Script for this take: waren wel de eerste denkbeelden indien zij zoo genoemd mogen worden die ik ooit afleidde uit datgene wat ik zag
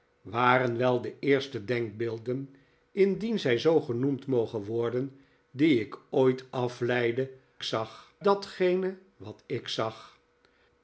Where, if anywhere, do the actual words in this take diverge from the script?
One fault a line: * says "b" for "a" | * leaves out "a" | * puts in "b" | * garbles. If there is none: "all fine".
* says "zag" for "uit"